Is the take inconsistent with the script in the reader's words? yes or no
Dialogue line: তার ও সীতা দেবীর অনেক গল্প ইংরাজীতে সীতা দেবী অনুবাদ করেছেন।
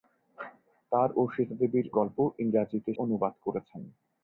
yes